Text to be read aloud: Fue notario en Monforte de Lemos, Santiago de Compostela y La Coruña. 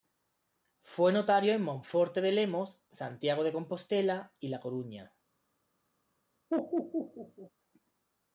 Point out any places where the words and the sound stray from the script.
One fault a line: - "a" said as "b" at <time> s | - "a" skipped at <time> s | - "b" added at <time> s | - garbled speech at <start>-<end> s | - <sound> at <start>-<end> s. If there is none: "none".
- laugh at 6.5-7.5 s